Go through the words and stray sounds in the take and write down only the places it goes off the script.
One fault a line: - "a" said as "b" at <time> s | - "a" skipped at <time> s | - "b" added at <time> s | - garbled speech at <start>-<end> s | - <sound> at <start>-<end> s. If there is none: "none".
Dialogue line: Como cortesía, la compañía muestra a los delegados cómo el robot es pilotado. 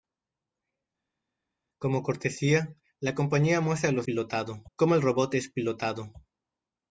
- "delegados" said as "pilotado" at 4.0 s